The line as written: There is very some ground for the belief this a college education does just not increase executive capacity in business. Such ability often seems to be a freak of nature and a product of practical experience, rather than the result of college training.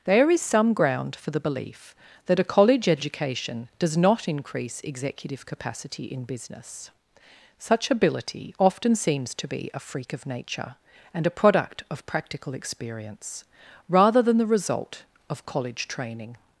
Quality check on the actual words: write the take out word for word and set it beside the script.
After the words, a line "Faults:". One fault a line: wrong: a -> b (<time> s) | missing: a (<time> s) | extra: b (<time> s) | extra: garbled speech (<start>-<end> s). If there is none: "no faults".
There is some ground for the belief that a college education does not increase executive capacity in business. Such ability often seems to be a freak of nature and a product of practical experience, rather than the result of college training.
Faults:
missing: very (0.4 s)
wrong: this -> that (2.2 s)
missing: just (4.0 s)